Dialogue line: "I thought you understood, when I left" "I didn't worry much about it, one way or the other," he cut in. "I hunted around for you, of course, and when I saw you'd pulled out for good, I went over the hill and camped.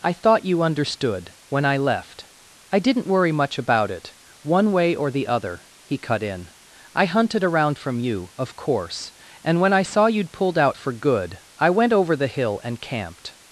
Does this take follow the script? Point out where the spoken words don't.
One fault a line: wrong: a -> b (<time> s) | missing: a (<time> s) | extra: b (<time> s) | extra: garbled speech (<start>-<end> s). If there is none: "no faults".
wrong: for -> from (7.8 s)